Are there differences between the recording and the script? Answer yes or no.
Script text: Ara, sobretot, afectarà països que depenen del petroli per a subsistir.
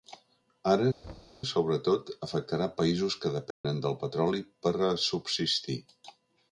no